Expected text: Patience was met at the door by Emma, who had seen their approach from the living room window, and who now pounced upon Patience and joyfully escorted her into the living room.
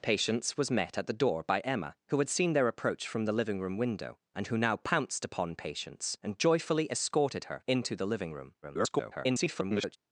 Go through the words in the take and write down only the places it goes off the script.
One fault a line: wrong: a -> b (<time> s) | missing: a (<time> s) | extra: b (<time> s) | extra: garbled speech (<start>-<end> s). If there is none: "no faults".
extra: garbled speech (8.6-10.0 s)